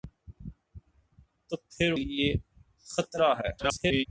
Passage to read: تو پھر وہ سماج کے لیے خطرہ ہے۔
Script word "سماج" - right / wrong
wrong